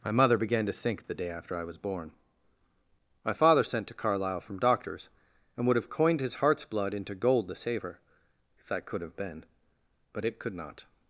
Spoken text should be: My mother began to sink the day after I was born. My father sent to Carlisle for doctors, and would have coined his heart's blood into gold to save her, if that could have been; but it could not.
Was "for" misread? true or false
true